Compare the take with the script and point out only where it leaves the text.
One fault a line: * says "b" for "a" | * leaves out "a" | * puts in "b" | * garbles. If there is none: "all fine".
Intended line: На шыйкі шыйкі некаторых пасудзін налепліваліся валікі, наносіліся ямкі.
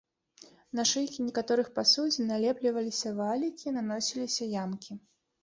* leaves out "шыйкі"